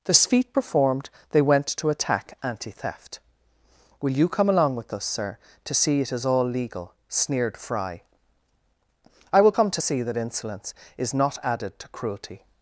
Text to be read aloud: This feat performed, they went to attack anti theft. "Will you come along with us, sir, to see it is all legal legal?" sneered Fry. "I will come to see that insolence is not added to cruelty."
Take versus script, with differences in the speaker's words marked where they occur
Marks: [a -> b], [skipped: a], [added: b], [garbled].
This feat performed, they went to attack anti theft. "Will you come along with us, sir, to see it is all legal [skipped: legal?"] sneered Fry. "I will come to see that insolence is not added to cruelty."